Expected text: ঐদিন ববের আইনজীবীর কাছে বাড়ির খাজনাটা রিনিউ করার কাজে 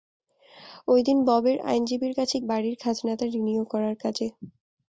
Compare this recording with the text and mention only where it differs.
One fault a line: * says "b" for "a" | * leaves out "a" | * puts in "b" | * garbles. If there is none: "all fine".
all fine